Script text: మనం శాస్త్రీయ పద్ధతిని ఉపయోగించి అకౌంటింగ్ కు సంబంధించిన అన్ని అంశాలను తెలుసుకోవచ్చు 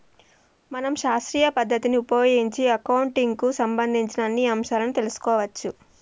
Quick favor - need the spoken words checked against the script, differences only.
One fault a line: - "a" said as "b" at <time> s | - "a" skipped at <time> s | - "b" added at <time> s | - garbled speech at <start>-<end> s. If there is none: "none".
none